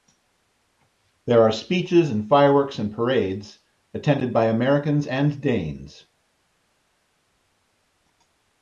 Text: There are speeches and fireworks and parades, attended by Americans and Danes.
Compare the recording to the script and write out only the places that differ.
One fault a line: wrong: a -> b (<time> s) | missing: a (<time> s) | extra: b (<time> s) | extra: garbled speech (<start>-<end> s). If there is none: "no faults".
no faults